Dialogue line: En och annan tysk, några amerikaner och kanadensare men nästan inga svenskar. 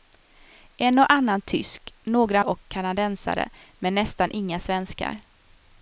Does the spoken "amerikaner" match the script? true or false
false